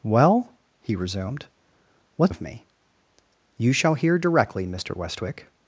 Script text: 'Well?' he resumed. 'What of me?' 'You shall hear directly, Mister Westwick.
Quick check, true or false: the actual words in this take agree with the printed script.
true